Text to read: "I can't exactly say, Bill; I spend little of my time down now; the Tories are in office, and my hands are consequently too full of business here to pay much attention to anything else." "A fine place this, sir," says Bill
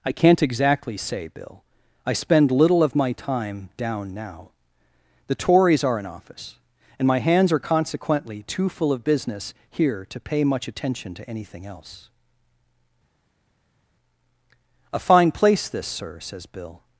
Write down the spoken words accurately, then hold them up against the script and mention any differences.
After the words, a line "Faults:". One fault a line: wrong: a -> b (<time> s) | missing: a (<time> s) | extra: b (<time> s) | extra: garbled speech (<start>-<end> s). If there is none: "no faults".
"I can't exactly say, Bill; I spend little of my time down now; the Tories are in office, and my hands are consequently too full of business here to pay much attention to anything else." "A fine place this, sir," says Bill
Faults:
no faults